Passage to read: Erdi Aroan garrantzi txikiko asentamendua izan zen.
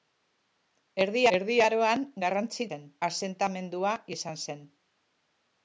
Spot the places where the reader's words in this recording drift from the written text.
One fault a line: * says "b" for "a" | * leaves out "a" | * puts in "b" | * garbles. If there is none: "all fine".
* puts in "erdi"
* says "zen" for "txikiko"